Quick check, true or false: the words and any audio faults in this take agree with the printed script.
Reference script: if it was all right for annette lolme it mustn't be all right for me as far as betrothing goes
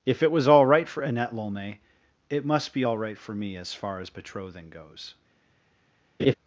false